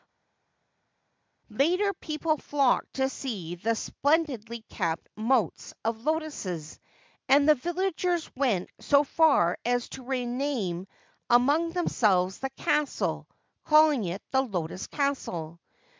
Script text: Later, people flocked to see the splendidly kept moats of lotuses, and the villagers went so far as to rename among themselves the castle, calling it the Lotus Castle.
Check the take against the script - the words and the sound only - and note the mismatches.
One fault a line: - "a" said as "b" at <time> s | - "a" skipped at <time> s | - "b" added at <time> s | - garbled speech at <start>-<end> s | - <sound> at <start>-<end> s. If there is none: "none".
none